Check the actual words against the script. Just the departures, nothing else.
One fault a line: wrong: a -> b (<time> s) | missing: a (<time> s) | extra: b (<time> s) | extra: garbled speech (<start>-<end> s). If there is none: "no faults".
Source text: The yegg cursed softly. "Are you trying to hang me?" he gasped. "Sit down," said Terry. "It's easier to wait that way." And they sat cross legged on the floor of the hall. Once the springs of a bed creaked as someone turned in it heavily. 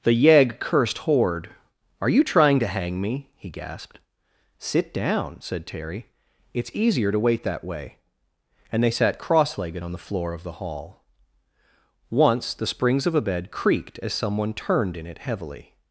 wrong: softly -> horde (1.0 s)